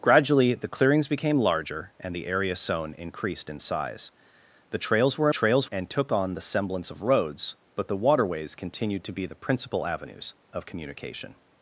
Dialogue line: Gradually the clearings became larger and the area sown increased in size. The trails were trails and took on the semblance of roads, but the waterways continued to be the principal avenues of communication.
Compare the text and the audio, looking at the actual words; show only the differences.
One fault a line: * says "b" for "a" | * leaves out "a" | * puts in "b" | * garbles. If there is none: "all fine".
all fine